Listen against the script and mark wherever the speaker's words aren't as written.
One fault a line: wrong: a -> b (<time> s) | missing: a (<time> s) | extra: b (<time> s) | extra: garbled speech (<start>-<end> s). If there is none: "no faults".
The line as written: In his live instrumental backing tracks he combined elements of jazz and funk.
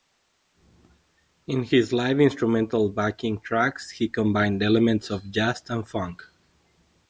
no faults